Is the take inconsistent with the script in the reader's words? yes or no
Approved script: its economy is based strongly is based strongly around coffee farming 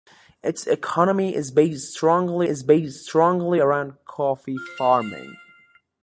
no